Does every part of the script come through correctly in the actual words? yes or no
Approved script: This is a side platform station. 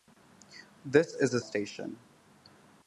no